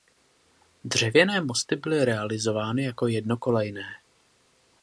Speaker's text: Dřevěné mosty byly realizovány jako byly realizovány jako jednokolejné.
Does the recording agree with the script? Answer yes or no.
no